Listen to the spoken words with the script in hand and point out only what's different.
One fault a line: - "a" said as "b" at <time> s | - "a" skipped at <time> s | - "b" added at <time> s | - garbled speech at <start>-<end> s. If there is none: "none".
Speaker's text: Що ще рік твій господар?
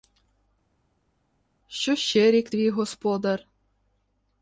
none